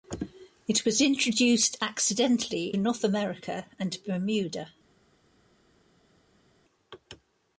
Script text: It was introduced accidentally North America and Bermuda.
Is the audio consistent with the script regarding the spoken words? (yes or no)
yes